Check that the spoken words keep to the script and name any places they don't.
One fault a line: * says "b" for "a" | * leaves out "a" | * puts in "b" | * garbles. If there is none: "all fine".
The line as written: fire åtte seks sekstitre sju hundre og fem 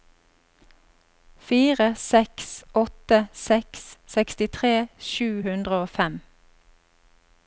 * puts in "seks"